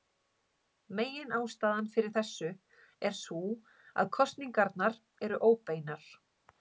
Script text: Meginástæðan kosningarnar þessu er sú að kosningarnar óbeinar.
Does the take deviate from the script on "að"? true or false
false